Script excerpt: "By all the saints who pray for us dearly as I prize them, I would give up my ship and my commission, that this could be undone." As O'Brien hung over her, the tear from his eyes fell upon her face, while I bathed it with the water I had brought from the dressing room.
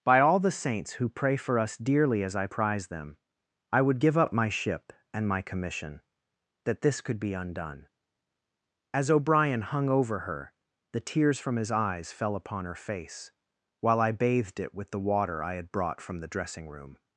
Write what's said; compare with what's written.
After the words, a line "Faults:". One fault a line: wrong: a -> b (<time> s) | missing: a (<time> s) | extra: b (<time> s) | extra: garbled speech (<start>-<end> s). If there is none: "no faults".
"By all the saints who pray for us dearly as I prize them, I would give up my ship and my commission, that this could be undone." As O'Brien hung over her, the tears from his eyes fell upon her face, while I bathed it with the water I had brought from the dressing room.
Faults:
wrong: tear -> tears (11.0 s)